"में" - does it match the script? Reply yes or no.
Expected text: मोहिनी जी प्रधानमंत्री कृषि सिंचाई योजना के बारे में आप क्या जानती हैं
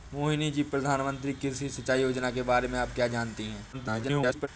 yes